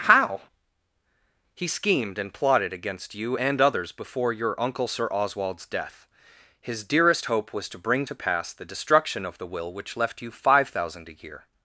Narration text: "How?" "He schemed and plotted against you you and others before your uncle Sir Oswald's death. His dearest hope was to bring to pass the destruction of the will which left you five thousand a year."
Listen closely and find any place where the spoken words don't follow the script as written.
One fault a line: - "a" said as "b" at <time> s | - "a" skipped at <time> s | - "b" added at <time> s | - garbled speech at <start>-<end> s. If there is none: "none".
- "you" skipped at 3.4 s